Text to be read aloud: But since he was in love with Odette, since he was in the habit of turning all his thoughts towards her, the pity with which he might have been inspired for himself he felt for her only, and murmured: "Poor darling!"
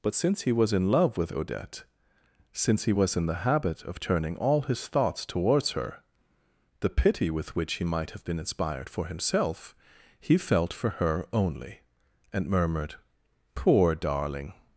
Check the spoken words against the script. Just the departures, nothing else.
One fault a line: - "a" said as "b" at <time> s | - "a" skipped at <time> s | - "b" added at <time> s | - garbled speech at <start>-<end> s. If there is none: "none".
none